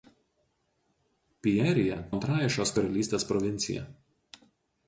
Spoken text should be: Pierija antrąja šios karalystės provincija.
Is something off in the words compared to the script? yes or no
no